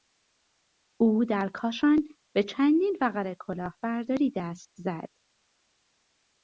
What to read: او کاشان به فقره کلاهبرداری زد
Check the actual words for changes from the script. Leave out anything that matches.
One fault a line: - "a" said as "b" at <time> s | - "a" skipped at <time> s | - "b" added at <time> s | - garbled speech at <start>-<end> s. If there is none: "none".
- "در" added at 1.2 s
- "چندین" added at 2.4 s
- "دست" added at 4.4 s